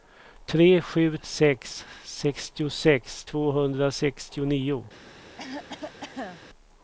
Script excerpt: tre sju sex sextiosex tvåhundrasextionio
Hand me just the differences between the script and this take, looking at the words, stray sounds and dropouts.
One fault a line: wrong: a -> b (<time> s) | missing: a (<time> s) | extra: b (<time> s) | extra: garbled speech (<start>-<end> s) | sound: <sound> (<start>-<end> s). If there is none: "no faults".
sound: cough (5.4-6.5 s)